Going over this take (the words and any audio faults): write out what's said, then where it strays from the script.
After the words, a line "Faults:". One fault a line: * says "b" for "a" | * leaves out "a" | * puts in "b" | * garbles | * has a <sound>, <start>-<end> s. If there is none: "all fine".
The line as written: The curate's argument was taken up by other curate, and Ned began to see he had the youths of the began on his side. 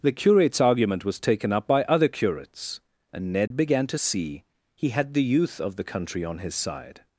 The curate's argument was taken up by other curates, and Ned began to see he had the youth of the country on his side.
Faults:
* says "curates" for "curate"
* has a dropout, 3.5-3.5 s
* says "youth" for "youths"
* says "country" for "began"